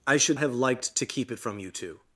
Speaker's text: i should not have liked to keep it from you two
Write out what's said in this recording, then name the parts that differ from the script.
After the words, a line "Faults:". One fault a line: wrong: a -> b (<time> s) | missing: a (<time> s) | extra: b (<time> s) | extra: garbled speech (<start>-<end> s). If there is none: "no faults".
i should have liked to keep it from you two
Faults:
missing: not (0.4 s)